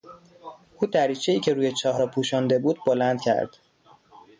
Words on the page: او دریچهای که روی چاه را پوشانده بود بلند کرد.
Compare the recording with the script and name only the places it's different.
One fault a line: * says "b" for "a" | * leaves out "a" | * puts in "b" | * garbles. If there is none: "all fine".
all fine